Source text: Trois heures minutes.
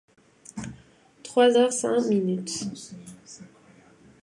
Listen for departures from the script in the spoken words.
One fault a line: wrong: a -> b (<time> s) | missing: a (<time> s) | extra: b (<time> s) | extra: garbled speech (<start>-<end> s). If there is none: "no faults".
extra: cinq (1.7 s)